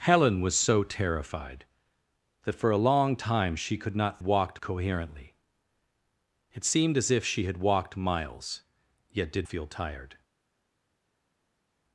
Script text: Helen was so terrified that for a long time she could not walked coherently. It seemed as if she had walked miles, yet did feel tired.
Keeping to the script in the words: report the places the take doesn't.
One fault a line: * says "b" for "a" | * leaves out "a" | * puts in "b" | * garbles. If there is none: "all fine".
all fine